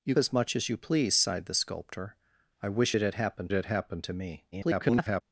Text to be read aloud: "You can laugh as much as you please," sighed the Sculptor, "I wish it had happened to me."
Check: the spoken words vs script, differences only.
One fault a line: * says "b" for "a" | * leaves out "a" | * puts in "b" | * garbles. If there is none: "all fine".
* leaves out "can laugh"
* puts in "had happened"
* garbles